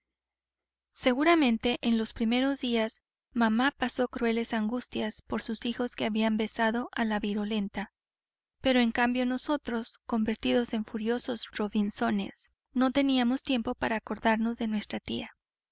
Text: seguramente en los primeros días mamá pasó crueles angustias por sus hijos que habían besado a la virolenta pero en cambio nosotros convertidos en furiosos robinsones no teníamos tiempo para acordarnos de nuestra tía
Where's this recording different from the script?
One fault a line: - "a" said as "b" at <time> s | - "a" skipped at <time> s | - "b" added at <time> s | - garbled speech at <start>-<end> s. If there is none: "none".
none